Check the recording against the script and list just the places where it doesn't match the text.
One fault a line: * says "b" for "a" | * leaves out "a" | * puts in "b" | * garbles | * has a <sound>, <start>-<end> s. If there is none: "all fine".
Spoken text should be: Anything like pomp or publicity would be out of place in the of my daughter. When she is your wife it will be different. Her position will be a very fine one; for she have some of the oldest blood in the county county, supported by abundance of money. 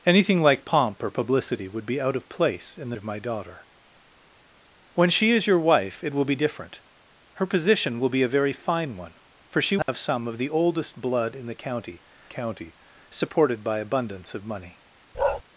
* has a dropout, 9.8-9.9 s
* has a bark, 15.1-15.4 s